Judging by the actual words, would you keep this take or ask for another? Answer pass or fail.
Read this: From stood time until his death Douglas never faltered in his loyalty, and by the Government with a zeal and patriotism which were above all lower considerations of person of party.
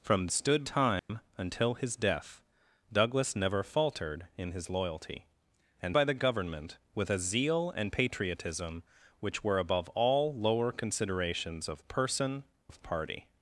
pass